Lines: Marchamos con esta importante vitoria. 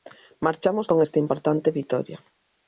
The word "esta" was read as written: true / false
true